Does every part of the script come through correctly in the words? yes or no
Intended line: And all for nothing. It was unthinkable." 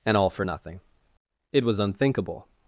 yes